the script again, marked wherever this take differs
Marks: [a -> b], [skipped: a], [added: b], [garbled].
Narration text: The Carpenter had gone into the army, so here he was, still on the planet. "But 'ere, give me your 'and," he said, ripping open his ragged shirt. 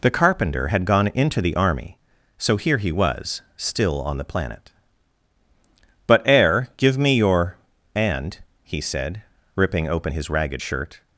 The Carpenter had gone into the army, so here he was, still on the planet. "But 'ere, give me your 'and," he said, ripping open his ragged shirt.